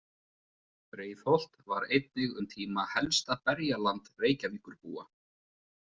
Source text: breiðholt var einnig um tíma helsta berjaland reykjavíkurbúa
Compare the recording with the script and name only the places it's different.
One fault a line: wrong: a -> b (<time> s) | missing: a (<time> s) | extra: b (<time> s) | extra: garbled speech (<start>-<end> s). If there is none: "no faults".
no faults